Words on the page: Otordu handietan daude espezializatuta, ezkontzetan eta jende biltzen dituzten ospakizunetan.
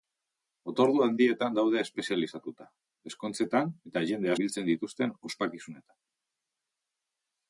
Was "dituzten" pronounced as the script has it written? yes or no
yes